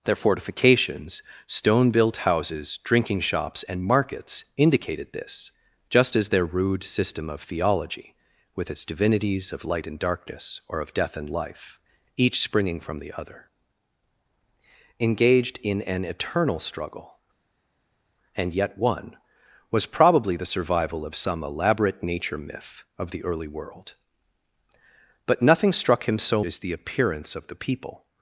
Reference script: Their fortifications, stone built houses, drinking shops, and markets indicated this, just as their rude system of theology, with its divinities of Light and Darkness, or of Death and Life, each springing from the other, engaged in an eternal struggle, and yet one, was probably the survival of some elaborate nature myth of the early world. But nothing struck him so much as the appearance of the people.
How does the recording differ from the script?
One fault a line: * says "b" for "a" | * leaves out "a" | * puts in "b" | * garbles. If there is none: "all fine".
* leaves out "much"